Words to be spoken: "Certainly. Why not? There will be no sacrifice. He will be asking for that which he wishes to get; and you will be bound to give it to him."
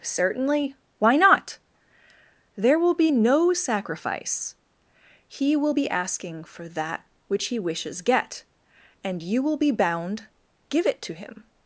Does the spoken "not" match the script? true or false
true